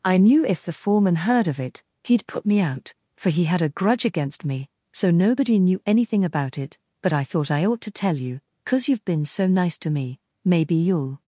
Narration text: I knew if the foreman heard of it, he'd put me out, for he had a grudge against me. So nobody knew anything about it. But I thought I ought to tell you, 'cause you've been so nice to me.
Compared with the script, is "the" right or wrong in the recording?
right